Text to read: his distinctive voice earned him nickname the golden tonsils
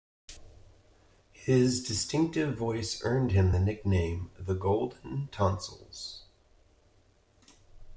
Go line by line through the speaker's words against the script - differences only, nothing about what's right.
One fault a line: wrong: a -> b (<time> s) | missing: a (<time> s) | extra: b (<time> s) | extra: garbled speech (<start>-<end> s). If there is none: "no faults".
extra: the (3.5 s)